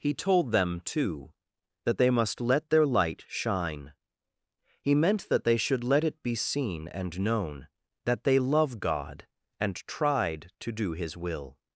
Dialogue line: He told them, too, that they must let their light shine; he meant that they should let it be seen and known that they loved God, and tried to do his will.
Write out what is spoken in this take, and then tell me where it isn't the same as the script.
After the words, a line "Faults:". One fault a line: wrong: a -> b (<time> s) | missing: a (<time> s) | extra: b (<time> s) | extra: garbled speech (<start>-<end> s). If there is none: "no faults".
He told them, too, that they must let their light shine; he meant that they should let it be seen and known that they love God, and tried to do his will.
Faults:
wrong: loved -> love (8.4 s)